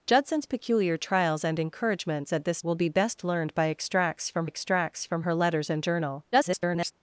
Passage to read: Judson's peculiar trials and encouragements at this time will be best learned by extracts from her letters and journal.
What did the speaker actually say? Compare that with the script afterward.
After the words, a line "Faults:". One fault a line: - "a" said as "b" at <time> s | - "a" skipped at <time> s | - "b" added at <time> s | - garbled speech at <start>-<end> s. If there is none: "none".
Judson's peculiar trials and encouragements at this will be best learned by extracts from extracts from her letters and journal. [garbled]
Faults:
- "time" skipped at 2.6 s
- "extracts from" added at 4.4 s
- garbled speech at 6.3-6.9 s